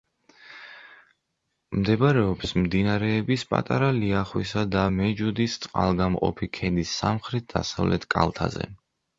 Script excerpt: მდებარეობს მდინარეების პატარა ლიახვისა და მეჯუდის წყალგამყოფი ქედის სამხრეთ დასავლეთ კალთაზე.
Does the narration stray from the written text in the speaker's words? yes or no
no